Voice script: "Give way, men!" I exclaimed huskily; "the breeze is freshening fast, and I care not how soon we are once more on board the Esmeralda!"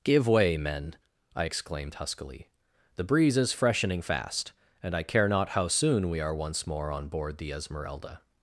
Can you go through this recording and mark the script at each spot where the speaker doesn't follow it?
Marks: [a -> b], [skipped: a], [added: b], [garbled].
"Give way, men!" I exclaimed huskily; "the breeze is freshening fast, and I care not how soon we are once more on board the Esmeralda!"